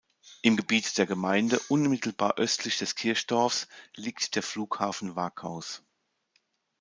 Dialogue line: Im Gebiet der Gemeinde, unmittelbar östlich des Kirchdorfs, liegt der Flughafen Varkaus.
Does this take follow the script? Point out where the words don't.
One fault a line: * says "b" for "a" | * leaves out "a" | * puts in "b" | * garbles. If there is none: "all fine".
all fine